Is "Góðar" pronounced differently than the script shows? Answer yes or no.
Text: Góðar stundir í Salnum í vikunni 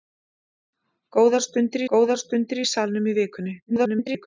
no